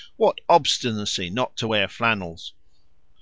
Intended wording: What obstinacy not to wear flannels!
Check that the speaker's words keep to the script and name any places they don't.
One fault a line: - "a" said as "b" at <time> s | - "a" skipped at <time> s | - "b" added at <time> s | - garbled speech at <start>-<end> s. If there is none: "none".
none